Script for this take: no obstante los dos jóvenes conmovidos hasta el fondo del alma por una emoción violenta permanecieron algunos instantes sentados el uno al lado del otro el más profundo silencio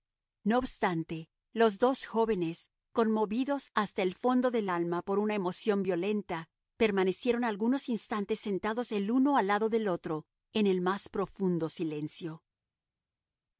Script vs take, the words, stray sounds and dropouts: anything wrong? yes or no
yes